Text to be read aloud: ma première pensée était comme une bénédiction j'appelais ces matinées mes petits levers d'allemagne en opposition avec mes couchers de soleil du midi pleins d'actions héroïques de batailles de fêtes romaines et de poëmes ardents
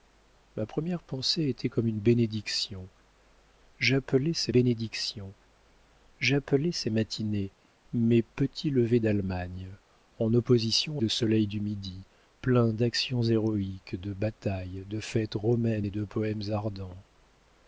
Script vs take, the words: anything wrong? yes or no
yes